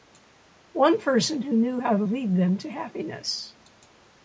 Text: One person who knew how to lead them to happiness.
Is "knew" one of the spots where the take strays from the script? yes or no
no